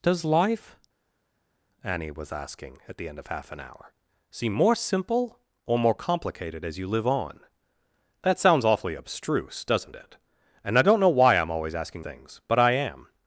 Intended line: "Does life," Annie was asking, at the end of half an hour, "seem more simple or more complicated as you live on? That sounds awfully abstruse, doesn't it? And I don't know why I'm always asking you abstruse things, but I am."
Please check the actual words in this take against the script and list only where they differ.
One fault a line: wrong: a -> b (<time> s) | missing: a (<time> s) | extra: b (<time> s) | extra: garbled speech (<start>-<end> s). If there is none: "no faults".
missing: you abstruse (12.0 s)